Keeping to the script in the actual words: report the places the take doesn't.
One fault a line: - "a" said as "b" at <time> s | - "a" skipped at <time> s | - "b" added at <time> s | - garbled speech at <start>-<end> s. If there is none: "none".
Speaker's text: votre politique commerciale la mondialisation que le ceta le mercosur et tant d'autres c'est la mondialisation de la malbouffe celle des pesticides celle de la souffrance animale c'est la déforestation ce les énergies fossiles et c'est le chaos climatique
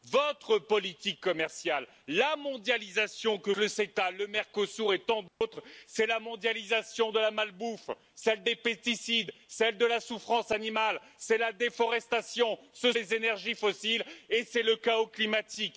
none